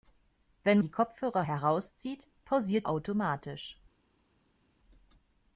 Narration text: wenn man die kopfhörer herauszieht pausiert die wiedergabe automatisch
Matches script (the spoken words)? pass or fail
fail